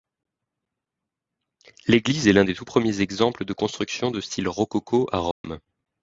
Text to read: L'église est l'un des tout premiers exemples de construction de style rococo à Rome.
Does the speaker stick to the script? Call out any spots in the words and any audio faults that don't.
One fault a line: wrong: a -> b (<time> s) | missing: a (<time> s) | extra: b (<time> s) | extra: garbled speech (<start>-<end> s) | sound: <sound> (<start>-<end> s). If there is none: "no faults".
sound: dropout (5.3-5.4 s)